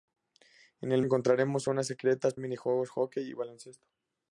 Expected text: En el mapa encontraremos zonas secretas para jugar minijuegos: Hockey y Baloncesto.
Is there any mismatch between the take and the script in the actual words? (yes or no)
yes